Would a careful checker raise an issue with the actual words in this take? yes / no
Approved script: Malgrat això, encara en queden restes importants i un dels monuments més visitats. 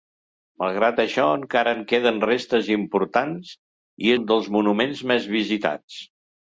no